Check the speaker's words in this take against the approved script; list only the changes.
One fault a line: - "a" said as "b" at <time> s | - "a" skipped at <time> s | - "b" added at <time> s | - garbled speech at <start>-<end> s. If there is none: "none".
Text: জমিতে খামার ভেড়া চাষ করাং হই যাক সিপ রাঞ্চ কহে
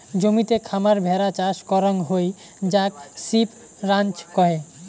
none